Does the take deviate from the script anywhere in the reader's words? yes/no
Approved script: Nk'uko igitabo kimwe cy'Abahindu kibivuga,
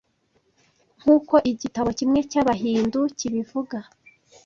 no